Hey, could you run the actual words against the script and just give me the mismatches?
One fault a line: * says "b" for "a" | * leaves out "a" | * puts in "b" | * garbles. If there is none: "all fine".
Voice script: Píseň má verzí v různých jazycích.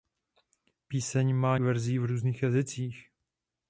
all fine